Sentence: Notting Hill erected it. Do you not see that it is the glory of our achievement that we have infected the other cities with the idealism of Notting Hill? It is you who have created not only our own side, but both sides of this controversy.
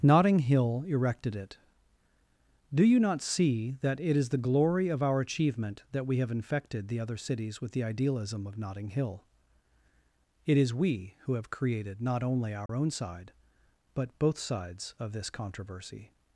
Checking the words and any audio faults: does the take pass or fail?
fail